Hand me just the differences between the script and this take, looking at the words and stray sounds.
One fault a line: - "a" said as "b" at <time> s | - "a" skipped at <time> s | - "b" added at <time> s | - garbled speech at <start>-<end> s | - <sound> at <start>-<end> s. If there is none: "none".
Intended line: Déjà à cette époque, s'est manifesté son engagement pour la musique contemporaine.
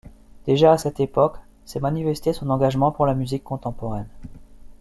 none